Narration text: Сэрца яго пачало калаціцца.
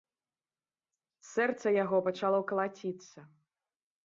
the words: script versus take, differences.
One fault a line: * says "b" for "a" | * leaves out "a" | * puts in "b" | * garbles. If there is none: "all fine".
all fine